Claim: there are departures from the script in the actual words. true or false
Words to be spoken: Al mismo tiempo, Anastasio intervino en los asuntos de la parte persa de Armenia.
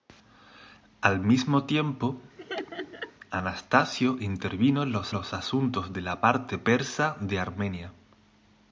true